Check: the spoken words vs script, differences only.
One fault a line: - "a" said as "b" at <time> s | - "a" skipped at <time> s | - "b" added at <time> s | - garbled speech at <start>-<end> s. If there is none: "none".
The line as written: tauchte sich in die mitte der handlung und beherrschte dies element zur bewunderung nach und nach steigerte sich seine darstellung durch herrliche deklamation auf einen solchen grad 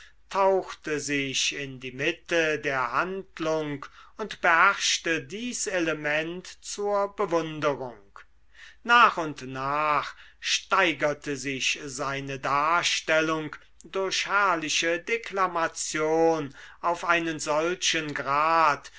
none